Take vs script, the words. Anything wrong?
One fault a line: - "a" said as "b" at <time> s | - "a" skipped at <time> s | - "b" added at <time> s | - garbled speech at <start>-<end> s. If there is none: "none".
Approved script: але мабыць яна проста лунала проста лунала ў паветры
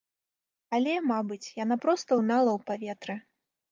- "проста лунала" skipped at 2.5 s